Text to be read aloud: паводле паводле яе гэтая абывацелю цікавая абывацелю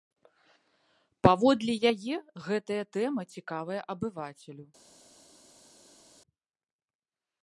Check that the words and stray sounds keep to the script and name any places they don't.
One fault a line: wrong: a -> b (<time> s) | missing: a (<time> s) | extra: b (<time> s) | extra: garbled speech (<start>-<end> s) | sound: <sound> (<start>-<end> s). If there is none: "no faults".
missing: паводле (1.8 s)
wrong: абывацелю -> тэма (3.0 s)